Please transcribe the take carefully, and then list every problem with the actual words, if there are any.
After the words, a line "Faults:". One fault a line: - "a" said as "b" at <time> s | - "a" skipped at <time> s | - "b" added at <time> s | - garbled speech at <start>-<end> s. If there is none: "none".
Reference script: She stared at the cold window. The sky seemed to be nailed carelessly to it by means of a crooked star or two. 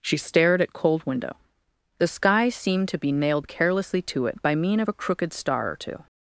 She stared at cold window. The sky seemed to be nailed carelessly to it by mean of a crooked star or two.
Faults:
- "the" skipped at 0.7 s
- "means" said as "mean" at 4.5 s